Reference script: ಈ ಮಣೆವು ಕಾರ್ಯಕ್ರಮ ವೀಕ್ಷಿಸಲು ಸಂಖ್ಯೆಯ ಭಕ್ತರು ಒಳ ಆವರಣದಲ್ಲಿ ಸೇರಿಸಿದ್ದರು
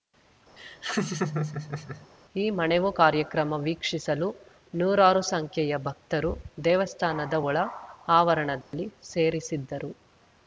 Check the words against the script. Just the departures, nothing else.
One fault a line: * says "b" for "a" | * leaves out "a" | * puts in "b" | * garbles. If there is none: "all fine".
* puts in "ನೂರಾರು"
* puts in "ದೇವಸ್ಥಾನದ"